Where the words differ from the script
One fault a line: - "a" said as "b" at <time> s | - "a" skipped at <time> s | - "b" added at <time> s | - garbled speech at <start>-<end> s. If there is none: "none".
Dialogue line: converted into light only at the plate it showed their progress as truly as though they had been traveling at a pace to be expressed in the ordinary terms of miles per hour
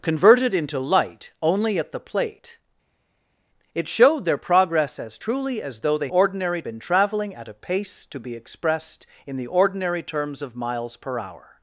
- "had" said as "ordinary" at 6.1 s